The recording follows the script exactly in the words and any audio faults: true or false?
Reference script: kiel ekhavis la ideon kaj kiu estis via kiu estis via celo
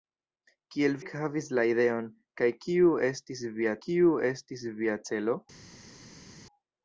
true